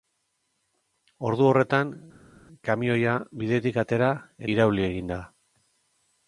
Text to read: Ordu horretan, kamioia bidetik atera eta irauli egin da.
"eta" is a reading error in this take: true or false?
true